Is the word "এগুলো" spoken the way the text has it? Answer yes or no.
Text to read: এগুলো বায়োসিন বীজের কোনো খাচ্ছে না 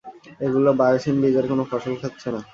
yes